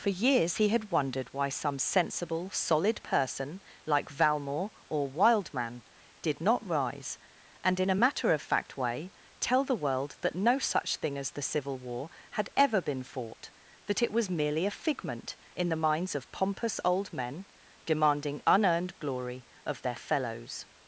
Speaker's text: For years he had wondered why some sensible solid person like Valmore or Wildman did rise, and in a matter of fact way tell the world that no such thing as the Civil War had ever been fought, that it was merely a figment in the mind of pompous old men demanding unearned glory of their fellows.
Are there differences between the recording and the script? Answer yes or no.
yes